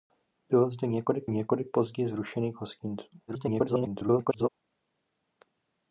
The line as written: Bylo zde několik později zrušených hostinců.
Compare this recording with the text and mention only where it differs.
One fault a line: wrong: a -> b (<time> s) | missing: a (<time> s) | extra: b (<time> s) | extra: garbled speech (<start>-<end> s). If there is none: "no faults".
extra: několik (1.3 s)
extra: garbled speech (3.3-4.5 s)